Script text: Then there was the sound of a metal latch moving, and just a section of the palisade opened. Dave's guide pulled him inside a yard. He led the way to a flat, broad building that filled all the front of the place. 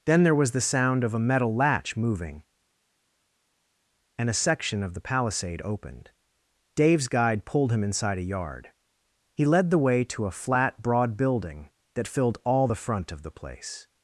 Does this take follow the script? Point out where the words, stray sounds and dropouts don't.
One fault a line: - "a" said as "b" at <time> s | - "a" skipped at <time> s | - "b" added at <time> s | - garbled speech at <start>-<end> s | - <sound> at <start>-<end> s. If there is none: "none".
- "just" skipped at 4.3 s